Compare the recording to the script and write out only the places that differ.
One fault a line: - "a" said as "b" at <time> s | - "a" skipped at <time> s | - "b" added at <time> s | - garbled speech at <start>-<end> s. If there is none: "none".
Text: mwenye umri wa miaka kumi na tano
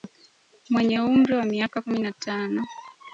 none